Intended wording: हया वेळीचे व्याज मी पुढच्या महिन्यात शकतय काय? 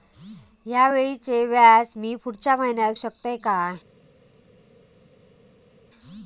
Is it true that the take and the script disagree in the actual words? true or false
false